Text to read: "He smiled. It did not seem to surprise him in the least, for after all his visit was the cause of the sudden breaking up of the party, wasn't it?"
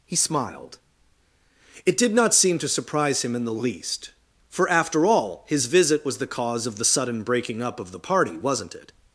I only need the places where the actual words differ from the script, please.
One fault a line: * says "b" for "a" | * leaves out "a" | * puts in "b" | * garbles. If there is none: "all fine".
all fine